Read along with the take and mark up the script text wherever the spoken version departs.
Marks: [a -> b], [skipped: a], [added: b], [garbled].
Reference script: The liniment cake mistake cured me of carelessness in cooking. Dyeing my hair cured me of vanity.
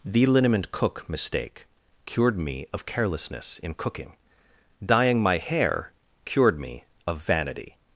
The liniment [cake -> cook] mistake cured me of carelessness in cooking. Dyeing my hair cured me of vanity.